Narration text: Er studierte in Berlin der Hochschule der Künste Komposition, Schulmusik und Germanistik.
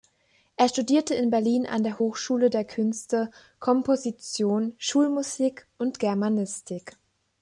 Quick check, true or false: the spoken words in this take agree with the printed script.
false